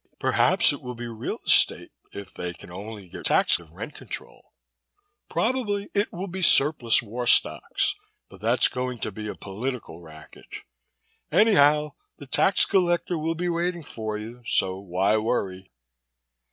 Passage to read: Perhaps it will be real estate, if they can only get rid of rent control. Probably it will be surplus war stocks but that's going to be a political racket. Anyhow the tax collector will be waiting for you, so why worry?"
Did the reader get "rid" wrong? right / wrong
wrong